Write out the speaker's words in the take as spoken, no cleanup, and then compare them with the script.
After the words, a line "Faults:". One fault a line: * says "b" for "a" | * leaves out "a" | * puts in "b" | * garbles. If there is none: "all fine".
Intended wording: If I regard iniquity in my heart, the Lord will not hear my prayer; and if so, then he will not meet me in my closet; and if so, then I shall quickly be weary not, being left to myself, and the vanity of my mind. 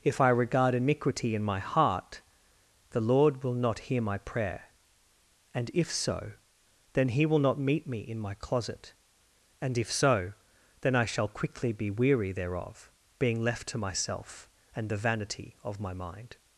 If I regard iniquity in my heart, the Lord will not hear my prayer; and if so, then he will not meet me in my closet; and if so, then I shall quickly be weary thereof, being left to myself, and the vanity of my mind.
Faults:
* says "thereof" for "not"